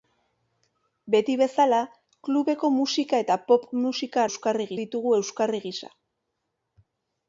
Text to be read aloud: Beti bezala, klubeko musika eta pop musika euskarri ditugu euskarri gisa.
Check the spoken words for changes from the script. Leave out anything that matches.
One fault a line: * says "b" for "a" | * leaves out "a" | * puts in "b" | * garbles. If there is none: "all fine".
all fine